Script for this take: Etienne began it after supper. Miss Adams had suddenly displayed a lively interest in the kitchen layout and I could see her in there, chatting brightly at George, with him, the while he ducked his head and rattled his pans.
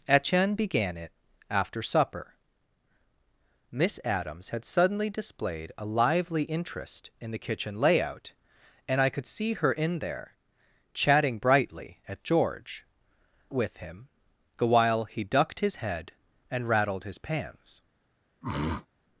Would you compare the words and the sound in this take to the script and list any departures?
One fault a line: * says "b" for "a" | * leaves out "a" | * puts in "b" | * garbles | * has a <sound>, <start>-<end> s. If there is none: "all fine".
* has a throat clearing, 18.4-18.9 s